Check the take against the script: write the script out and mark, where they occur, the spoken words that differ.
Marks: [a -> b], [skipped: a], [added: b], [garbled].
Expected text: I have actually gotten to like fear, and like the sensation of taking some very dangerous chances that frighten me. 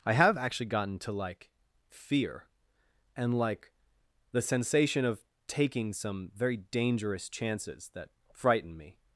I have actually gotten to like fear, and like the sensation of taking some very dangerous chances that frighten me.